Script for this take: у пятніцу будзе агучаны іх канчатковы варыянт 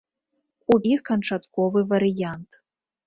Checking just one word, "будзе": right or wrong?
wrong